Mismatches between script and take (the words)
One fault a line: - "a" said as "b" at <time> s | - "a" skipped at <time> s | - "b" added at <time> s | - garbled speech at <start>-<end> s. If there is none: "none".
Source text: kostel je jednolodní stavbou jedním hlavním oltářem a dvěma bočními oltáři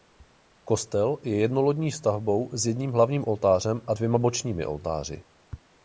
- "s" added at 2.5 s